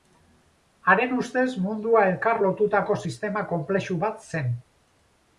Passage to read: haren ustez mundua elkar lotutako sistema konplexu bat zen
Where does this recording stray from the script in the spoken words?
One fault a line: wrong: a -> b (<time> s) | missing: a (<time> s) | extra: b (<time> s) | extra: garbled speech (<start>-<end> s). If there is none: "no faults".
no faults